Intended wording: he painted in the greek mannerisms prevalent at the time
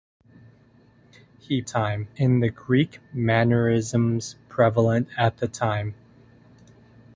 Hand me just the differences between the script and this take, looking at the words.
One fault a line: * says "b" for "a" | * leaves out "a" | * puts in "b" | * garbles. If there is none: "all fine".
* says "time" for "painted"